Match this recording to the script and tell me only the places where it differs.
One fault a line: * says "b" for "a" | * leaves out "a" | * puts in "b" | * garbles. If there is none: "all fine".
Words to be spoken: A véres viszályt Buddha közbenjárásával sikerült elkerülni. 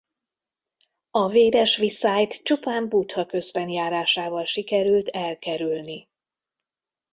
* puts in "csupán"